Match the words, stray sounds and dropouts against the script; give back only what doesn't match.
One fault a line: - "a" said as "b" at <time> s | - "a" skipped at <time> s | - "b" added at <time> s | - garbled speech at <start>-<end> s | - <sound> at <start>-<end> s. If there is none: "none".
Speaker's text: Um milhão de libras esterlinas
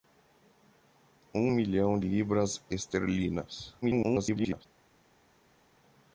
- "de" skipped at 2.0 s
- garbled speech at 3.8-4.7 s